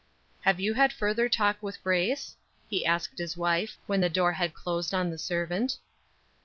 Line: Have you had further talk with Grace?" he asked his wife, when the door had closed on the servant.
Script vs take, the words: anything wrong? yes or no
no